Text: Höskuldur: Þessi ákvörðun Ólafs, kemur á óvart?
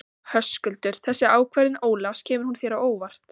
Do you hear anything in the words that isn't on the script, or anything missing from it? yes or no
yes